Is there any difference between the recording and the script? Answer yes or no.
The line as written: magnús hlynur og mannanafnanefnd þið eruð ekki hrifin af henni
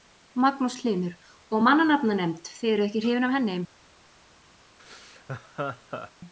no